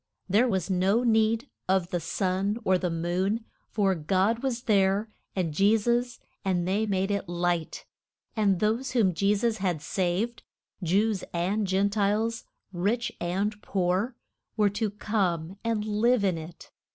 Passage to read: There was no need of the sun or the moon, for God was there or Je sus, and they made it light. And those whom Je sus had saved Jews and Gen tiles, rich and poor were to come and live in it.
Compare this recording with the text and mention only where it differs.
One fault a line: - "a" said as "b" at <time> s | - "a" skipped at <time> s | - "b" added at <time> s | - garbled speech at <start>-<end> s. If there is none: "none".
- "or" said as "and" at 5.3 s